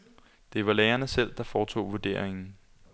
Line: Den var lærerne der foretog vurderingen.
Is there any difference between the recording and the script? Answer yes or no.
yes